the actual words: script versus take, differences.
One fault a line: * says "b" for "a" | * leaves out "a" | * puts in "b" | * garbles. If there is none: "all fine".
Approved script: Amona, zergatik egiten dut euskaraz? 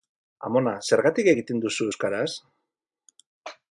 * says "duzu" for "dut"